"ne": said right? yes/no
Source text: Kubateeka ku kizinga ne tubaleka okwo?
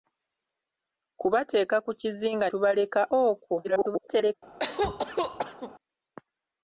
no